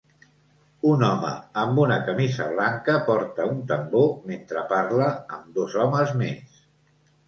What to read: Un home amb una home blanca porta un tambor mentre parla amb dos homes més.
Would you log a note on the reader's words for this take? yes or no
yes